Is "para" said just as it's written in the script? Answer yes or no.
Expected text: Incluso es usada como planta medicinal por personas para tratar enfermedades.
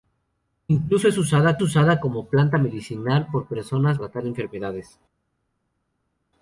no